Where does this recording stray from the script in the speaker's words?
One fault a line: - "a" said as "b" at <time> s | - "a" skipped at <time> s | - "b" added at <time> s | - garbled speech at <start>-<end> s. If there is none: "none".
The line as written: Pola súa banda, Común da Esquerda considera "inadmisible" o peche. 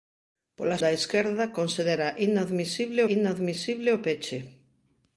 - "súa banda Común" skipped at 0.8 s
- "inadmisible" added at 3.2 s